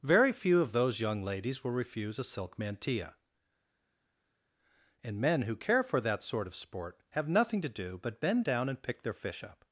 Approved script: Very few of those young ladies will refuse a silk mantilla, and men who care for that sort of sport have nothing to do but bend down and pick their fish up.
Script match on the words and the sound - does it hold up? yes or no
yes